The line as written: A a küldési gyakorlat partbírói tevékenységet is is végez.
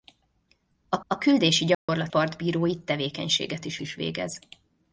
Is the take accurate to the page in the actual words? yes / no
yes